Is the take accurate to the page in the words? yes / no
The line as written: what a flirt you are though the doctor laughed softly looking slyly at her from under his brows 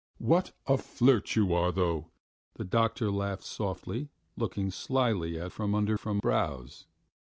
no